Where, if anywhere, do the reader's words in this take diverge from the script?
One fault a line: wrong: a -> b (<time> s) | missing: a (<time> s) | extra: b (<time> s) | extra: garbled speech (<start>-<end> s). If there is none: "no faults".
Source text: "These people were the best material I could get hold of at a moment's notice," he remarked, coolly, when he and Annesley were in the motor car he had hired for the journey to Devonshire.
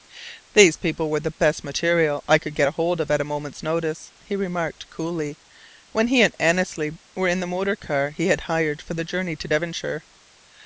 no faults